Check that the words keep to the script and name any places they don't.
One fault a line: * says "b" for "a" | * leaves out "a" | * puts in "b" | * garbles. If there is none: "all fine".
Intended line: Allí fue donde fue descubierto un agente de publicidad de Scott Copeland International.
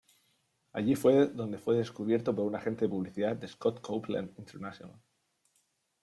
* puts in "por"